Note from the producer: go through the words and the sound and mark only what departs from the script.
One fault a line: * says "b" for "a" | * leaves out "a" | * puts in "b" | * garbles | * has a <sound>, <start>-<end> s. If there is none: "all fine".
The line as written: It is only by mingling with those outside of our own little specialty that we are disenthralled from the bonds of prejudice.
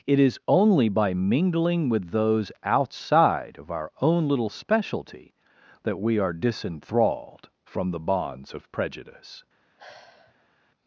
* has a sigh, 9.8-10.5 s